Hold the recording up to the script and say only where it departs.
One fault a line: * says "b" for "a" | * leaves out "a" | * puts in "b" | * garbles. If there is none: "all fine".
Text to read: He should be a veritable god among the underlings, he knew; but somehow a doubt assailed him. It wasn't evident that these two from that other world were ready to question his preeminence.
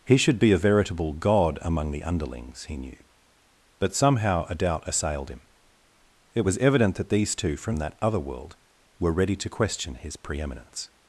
* says "was" for "wasn't"